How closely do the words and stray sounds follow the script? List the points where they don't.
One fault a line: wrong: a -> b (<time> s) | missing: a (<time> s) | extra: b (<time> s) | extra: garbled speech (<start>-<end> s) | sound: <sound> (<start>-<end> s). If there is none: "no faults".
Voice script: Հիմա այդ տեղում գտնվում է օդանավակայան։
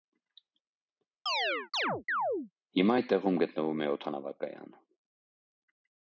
sound: chirp (1.3-2.5 s)